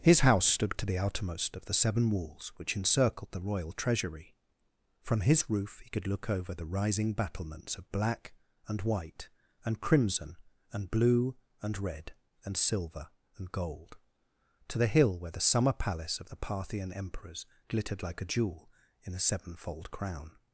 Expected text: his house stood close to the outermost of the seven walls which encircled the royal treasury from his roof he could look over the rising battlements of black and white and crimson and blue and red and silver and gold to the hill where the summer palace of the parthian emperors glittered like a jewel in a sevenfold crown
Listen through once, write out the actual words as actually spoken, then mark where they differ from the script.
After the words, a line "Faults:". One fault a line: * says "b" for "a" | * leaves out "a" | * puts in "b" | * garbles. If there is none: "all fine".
his house stood to the outermost of the seven walls which encircled the royal treasury from his roof he could look over the rising battlements of black and white and crimson and blue and red and silver and gold to the hill where the summer palace of the parthian emperors glittered like a jewel in a sevenfold crown
Faults:
* leaves out "close"